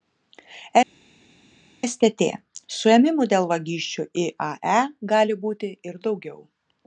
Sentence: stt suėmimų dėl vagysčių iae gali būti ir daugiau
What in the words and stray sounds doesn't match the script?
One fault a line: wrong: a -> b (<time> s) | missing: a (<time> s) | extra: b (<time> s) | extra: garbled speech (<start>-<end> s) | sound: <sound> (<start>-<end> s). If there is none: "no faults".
no faults